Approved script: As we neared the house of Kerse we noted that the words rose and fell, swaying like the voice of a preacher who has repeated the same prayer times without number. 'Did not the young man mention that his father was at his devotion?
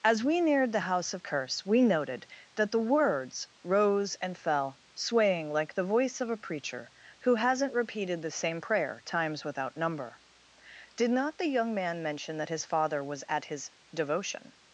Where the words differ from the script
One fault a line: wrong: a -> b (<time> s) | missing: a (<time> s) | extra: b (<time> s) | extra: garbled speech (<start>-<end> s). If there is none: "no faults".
wrong: has -> hasn't (7.3 s)